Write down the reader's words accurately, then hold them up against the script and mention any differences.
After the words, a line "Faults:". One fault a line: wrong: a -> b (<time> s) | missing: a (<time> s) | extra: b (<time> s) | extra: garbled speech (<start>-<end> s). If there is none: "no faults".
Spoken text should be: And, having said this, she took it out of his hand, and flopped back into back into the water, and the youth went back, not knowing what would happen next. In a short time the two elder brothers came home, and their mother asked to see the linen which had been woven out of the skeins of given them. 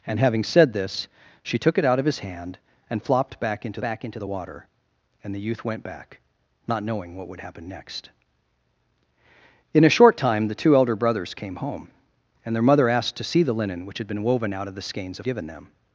And, having said this, she took it out of his hand, and flopped back into back into the water, and the youth went back, not knowing what would happen next. In a short time the two elder brothers came home, and their mother asked to see the linen which had been woven out of the skeins of given them.
Faults:
no faults